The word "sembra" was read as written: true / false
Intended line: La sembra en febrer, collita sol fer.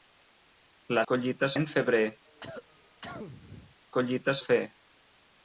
false